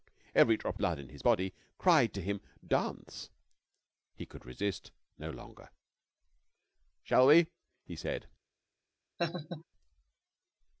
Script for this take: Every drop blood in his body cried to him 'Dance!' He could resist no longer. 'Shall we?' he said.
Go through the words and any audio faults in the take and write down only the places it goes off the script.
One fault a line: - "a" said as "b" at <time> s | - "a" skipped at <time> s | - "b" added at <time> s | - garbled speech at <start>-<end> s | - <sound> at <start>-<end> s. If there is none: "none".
- laugh at 9.2-9.6 s